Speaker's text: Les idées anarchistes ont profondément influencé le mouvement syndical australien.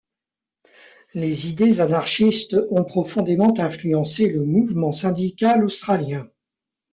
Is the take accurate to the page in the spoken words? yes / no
yes